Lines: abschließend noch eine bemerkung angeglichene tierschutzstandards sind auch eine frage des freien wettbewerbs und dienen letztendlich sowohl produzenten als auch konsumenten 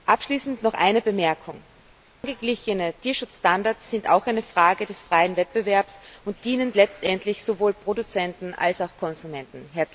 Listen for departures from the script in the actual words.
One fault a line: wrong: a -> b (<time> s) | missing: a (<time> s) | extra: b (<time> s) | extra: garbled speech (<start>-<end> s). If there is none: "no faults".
no faults